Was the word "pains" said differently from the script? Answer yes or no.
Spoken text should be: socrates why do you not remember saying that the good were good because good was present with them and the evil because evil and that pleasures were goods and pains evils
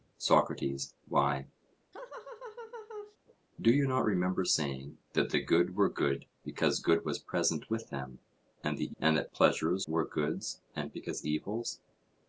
yes